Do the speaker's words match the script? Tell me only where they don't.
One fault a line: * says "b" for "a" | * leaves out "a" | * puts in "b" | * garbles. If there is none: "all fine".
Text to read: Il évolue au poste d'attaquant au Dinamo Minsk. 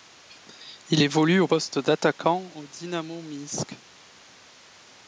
all fine